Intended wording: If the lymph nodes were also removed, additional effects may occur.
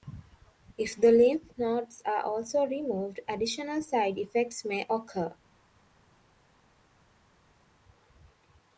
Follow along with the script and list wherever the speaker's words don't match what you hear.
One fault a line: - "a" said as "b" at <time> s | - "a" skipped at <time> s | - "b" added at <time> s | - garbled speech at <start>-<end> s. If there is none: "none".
- "were" said as "are" at 2.1 s
- "side" added at 3.8 s